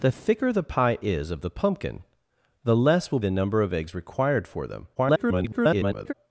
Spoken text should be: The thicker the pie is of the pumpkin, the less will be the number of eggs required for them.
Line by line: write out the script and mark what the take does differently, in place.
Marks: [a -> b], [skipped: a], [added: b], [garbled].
The thicker the pie is of the pumpkin, the less will [skipped: be] the number of eggs required for them. [garbled]